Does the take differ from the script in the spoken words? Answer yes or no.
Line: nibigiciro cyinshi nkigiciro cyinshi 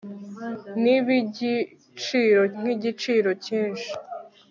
yes